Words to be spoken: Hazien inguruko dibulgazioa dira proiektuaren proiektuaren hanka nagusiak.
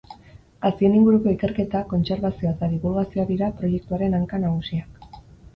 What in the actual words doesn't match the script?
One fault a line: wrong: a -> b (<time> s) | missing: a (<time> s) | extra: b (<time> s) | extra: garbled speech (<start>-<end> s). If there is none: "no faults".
extra: ikerketa kontserbazioa eta (1.3 s)
missing: proiektuaren (4.2 s)